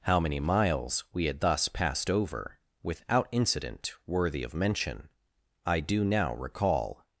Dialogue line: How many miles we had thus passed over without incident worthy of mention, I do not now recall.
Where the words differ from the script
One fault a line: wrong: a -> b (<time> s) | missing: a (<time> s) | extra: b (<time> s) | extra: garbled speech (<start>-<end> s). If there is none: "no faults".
missing: not (6.0 s)